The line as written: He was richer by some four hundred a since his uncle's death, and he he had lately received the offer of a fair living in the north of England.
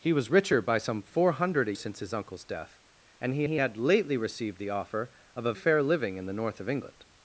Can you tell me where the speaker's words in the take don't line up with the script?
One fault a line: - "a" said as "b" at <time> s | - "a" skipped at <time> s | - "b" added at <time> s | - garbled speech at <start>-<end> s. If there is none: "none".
none